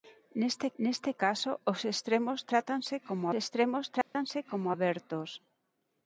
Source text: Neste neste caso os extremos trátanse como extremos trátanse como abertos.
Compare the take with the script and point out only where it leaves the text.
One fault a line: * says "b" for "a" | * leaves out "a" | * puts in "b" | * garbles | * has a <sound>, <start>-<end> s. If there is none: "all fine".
* has a dropout, 4.0-4.1 s